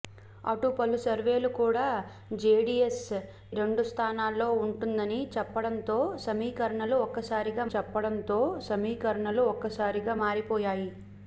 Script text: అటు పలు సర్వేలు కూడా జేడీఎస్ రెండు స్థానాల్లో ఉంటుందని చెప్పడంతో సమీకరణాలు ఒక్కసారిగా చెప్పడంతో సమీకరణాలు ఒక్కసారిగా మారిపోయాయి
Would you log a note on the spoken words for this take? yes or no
no